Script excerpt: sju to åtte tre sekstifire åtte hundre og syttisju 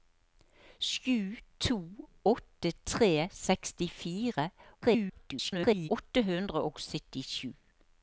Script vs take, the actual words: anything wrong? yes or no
yes